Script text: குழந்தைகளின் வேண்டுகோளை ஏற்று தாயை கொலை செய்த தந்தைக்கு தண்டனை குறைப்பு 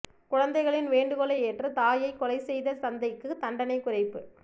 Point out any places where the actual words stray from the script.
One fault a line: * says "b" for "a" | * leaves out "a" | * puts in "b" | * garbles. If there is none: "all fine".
all fine